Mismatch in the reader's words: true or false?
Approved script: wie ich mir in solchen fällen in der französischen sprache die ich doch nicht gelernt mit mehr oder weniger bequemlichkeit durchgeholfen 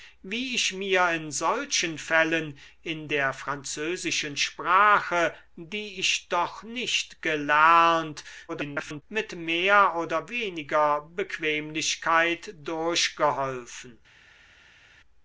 true